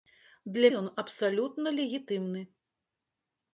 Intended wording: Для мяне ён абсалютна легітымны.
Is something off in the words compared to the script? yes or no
yes